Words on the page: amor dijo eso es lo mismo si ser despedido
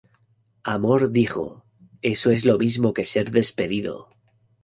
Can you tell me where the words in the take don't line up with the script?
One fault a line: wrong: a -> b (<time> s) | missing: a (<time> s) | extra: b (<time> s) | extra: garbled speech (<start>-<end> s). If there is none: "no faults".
wrong: si -> que (2.9 s)